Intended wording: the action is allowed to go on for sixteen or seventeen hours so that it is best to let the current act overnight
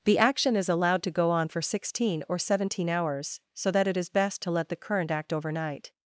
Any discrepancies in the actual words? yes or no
no